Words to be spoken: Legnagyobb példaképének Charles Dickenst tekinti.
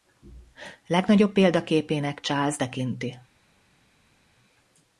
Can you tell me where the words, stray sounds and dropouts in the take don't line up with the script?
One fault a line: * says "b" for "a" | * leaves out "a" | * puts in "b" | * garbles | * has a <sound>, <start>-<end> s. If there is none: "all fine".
* leaves out "Dickenst"